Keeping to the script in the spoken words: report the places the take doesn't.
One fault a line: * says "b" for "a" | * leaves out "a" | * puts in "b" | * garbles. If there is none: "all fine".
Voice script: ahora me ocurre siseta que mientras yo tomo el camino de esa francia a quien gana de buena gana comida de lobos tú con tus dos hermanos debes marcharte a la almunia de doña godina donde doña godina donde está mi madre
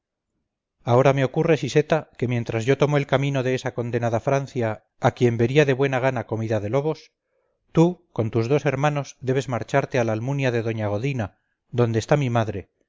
* puts in "condenada"
* says "vería" for "gana"
* leaves out "doña godina donde"